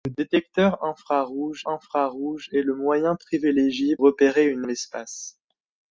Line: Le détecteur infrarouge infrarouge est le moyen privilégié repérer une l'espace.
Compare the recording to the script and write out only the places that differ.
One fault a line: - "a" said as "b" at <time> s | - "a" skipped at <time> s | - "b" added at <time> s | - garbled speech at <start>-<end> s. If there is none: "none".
none